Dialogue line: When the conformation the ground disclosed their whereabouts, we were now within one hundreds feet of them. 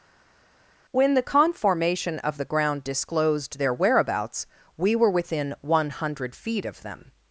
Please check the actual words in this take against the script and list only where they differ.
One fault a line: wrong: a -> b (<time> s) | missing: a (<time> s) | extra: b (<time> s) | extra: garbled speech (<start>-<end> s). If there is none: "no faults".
extra: of (2.2 s)
missing: now (5.1 s)
wrong: hundreds -> hundred (5.9 s)